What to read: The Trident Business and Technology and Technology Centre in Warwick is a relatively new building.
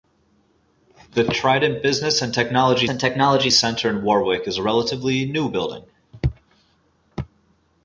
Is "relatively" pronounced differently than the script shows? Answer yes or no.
no